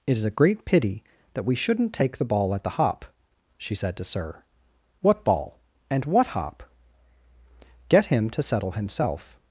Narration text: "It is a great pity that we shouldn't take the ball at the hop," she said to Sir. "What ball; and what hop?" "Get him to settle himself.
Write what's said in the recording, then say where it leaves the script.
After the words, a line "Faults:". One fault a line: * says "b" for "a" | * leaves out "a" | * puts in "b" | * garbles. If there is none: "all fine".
"It is a great pity that we shouldn't take the ball at the hop," she said to Sir. "What ball; and what hop?" "Get him to settle himself.
Faults:
all fine